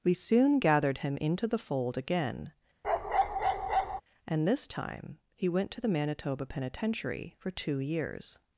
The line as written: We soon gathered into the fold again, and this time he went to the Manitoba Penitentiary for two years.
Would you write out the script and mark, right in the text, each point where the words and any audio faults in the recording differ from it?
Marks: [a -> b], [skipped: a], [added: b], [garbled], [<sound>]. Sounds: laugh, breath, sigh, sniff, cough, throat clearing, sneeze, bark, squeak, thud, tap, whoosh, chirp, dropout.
We soon gathered [added: him] into the fold again, [bark] and this time he went to the Manitoba Penitentiary for two years.